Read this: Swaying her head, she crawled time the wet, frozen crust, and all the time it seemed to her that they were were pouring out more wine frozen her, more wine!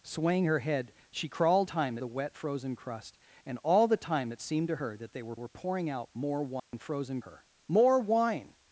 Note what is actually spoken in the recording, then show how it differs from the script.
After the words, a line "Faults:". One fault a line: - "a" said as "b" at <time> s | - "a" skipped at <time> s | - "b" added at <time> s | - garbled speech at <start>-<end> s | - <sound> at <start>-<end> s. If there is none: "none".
Swaying her head, she crawled time the wet, frozen crust, and all the time it seemed to her that they were were pouring out more wine frozen her, more wine!
Faults:
- dropout at 6.6-6.7 s